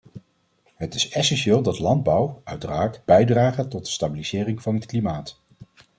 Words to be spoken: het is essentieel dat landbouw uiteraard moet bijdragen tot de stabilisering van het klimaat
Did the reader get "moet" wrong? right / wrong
wrong